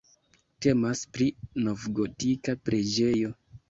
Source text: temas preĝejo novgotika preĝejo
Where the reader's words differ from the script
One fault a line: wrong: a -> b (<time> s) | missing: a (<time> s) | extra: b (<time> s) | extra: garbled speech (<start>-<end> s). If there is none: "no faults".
wrong: preĝejo -> pri (1.2 s)